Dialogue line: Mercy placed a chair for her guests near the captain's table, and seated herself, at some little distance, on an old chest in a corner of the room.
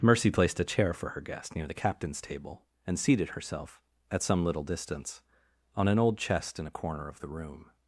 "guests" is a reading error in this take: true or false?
true